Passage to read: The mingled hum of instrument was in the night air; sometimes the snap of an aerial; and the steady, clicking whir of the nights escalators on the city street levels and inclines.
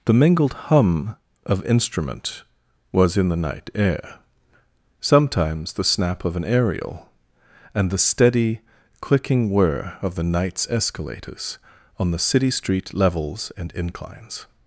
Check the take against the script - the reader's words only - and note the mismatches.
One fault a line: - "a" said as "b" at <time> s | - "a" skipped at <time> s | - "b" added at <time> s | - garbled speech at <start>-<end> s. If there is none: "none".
none